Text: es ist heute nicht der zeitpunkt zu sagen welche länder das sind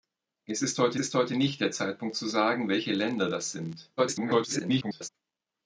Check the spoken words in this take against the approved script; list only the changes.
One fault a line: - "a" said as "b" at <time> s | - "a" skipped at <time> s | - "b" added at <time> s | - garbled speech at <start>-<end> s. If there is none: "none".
- "ist heute" added at 1.0 s
- garbled speech at 4.0-5.1 s